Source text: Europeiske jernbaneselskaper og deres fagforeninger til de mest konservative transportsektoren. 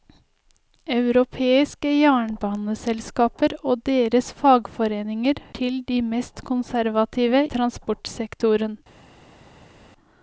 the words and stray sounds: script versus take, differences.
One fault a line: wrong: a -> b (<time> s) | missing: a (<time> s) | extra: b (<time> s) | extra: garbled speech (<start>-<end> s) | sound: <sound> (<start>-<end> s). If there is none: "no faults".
no faults